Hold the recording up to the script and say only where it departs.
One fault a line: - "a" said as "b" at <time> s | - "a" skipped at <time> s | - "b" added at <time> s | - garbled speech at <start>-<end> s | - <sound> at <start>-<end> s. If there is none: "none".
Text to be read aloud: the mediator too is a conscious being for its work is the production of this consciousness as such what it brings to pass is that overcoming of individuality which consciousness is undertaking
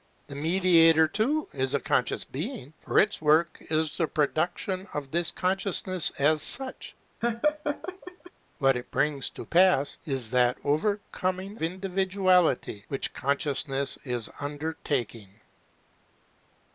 - laugh at 7.2-8.3 s
- "of" skipped at 11.6 s